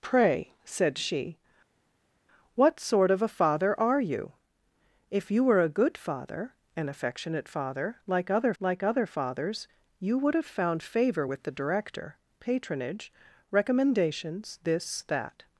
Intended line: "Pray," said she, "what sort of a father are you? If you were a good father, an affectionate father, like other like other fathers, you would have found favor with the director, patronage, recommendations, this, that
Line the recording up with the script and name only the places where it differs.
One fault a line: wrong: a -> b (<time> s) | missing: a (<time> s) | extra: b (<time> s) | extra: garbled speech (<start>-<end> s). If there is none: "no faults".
no faults